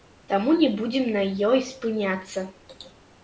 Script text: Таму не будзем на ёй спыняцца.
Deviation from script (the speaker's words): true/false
false